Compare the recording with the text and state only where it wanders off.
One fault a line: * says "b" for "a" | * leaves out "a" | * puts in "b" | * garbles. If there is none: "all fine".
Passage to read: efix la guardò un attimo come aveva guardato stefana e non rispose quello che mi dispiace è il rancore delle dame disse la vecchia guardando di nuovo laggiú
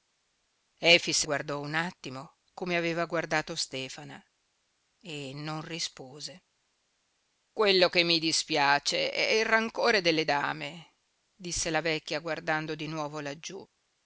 * leaves out "la"